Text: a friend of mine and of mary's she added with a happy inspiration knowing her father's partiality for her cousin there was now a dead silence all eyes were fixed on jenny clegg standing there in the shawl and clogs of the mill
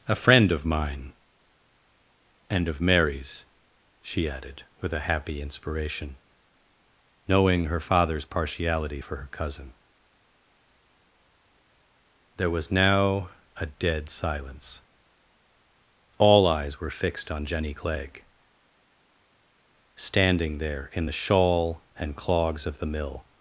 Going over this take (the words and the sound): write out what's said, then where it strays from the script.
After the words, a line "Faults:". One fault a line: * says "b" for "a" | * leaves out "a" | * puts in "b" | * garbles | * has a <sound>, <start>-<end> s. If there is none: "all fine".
a friend of mine and of mary's she added with a happy inspiration knowing her father's partiality for her cousin there was now a dead silence all eyes were fixed on jenny clegg standing there in the shawl and clogs of the mill
Faults:
all fine